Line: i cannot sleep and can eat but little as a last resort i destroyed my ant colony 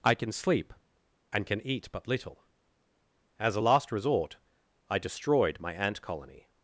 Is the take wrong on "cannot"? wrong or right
wrong